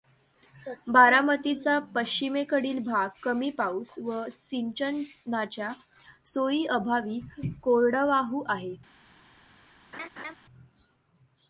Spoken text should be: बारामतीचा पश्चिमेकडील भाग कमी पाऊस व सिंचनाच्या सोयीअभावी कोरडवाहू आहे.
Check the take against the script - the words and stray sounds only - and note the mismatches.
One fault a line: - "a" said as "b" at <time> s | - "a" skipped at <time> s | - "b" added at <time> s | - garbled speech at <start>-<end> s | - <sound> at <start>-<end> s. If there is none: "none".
- laugh at 9.9-10.3 s